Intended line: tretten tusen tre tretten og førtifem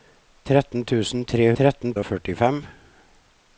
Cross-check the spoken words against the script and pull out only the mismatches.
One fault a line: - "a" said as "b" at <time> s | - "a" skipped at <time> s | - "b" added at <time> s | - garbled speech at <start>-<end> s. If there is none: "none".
none